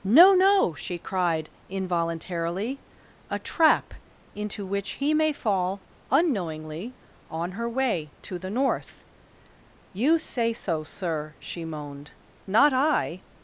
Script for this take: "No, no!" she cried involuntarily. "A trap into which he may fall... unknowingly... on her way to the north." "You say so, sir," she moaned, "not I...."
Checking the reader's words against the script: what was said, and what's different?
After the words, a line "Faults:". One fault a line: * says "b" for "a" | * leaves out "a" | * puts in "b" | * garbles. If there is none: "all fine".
"No, no!" she cried involuntarily. "A trap into which he may fall... unknowingly... on her way to the north." "You say so, sir," she moaned, "not I...."
Faults:
all fine